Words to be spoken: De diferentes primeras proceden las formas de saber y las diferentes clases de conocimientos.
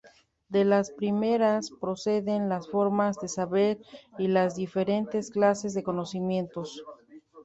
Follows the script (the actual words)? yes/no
no